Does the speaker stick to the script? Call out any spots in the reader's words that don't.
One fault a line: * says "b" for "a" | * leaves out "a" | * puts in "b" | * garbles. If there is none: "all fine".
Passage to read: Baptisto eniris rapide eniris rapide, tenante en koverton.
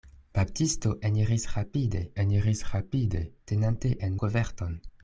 all fine